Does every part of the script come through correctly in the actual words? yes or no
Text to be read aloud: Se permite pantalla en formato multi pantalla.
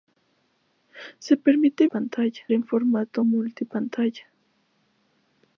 yes